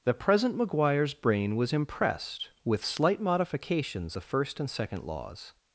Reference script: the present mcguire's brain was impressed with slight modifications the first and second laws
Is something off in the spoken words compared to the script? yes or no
no